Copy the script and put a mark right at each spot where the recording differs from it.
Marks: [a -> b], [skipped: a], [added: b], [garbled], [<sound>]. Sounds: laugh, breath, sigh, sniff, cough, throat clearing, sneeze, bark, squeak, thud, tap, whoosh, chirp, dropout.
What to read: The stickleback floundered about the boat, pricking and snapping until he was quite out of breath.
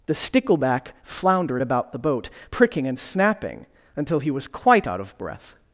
The stickleback floundered about the boat, pricking and snapping until he was quite out of breath.